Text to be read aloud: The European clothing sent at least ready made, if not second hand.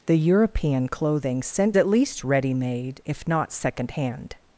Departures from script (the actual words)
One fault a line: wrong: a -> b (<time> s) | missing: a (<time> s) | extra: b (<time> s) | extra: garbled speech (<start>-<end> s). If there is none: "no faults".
no faults